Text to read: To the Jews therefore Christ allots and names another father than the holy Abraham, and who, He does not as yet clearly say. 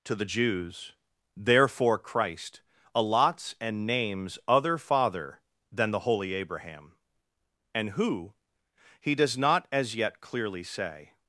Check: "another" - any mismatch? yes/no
yes